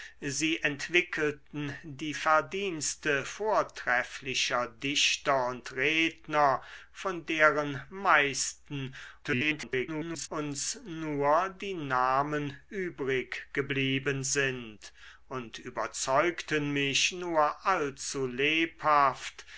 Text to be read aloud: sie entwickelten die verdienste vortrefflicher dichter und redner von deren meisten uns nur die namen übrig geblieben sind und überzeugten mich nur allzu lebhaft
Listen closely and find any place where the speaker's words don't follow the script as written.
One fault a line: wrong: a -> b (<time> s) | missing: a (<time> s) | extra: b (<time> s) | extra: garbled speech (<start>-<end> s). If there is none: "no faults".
extra: garbled speech (9.2-10.3 s)